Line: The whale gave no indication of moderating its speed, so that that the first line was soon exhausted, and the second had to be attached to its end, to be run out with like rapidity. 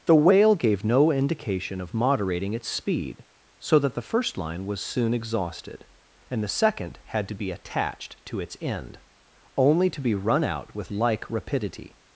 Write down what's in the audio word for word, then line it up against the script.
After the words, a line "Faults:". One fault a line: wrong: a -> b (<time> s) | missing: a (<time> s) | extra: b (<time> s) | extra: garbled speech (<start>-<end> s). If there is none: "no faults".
The whale gave no indication of moderating its speed, so that the first line was soon exhausted, and the second had to be attached to its end, only to be run out with like rapidity.
Faults:
missing: that (3.9 s)
extra: only (9.6 s)